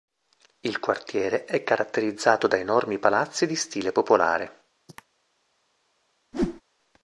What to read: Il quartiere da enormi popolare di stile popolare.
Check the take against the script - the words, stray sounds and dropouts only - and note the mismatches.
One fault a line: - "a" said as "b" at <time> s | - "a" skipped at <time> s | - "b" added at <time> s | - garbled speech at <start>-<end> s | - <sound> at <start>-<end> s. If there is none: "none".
- "è caratterizzato" added at 1.4 s
- "popolare" said as "palazzi" at 3.0 s
- cough at 4.9-5.1 s
- whoosh at 6.3-6.6 s